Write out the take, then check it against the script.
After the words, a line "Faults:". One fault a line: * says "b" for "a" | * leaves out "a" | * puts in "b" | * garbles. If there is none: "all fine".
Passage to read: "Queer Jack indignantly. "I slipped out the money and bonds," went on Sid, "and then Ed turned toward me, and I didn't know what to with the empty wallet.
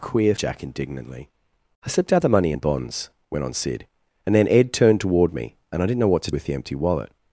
"Queer Jack indignantly. "I slipped out the money and bonds," went on Sid, "and then Ed turned toward me, and I didn't know what to with the empty wallet.
Faults:
all fine